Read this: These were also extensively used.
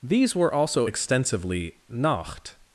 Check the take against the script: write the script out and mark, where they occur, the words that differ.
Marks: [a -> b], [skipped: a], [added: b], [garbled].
These were also extensively [used. -> nacht]